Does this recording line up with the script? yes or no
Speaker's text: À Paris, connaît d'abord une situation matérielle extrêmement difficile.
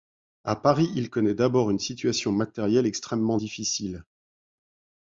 no